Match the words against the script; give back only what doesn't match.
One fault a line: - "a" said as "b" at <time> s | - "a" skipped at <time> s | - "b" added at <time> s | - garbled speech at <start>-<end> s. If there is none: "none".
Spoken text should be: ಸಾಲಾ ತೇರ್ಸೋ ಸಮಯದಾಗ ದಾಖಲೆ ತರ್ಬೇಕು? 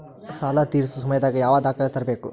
- "ಯಾವ" added at 1.4 s